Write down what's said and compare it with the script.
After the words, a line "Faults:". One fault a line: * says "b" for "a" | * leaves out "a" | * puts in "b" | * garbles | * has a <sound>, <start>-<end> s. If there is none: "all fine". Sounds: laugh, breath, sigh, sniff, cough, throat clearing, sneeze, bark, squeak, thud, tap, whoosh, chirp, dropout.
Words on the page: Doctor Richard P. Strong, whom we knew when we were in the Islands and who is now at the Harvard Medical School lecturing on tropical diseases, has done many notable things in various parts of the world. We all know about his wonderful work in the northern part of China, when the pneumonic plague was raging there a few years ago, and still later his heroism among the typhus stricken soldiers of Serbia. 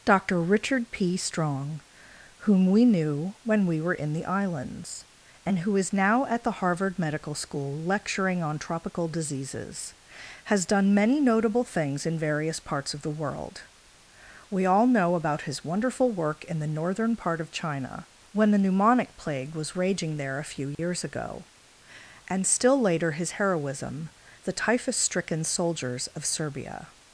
Doctor Richard P. Strong, whom we knew when we were in the Islands and who is now at the Harvard Medical School lecturing on tropical diseases, has done many notable things in various parts of the world. We all know about his wonderful work in the northern part of China, when the pneumonic plague was raging there a few years ago, and still later his heroism the typhus stricken soldiers of Serbia.
Faults:
* has a dropout, 20.7-20.8 s
* leaves out "among"